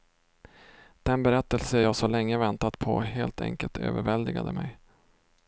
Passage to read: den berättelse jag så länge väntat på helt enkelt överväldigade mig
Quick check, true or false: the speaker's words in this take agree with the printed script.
true